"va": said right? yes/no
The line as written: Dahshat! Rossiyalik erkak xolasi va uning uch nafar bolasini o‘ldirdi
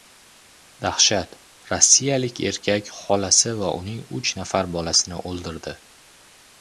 yes